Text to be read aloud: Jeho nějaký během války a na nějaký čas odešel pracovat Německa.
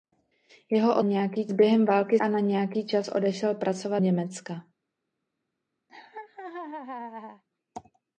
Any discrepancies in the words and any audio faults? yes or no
yes